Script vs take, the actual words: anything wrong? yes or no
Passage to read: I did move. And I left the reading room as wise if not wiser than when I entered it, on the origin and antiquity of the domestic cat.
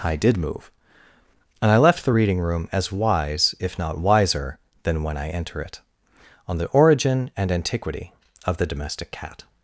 yes